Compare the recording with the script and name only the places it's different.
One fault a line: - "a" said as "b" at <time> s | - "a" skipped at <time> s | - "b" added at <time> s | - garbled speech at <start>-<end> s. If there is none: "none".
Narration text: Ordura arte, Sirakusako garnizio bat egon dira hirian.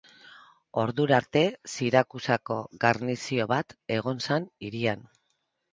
- "dira" said as "zen" at 4.3 s